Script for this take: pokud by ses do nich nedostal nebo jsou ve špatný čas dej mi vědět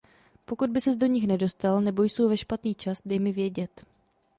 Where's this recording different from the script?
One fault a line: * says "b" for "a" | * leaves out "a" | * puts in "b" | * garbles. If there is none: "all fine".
all fine